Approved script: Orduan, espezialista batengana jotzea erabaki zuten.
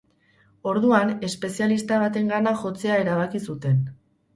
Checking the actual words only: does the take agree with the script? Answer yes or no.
yes